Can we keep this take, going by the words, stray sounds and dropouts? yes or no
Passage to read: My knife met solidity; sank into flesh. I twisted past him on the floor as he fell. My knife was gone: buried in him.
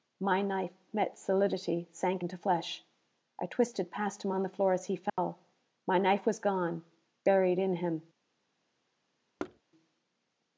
no